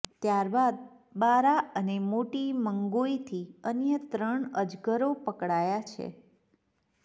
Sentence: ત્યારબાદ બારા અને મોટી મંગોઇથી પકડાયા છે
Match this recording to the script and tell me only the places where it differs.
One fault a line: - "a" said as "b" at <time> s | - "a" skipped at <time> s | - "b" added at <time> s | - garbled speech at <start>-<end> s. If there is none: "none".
- "અન્ય ત્રણ અજગરો" added at 3.7 s